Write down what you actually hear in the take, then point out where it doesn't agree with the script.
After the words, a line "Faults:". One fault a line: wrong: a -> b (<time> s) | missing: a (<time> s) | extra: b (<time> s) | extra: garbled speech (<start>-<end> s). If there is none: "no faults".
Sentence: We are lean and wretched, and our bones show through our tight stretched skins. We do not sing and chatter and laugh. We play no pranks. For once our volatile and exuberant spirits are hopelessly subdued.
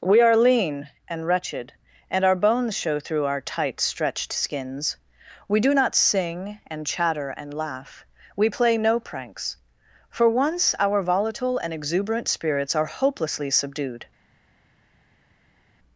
We are lean and wretched, and our bones show through our tight stretched skins. We do not sing and chatter and laugh. We play no pranks. For once our volatile and exuberant spirits are hopelessly subdued.
Faults:
no faults